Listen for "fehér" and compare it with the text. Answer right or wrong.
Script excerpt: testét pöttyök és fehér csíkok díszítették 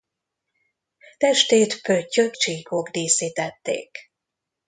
wrong